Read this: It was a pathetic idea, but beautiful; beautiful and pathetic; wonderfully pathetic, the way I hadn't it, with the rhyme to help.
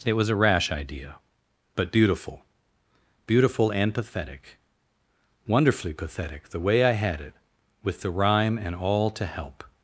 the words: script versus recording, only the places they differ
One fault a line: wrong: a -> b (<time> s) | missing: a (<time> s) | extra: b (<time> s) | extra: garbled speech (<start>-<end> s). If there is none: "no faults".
wrong: pathetic -> rash (0.3 s)
wrong: hadn't -> had (6.9 s)
extra: and all (8.6 s)